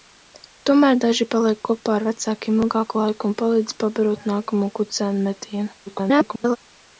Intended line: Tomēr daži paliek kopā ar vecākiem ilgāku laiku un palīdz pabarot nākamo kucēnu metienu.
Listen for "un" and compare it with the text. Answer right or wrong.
right